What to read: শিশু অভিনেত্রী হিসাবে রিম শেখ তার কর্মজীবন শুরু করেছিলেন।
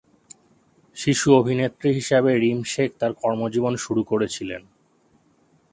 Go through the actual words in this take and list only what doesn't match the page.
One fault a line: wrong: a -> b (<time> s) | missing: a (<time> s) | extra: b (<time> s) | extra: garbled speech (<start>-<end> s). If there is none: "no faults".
no faults